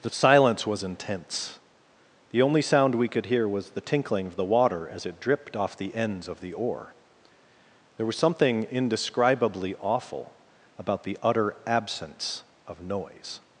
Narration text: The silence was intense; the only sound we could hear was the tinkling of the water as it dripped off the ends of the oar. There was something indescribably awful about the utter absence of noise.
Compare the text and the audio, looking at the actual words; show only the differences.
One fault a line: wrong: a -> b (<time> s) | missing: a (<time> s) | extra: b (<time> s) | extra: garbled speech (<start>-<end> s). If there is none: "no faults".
no faults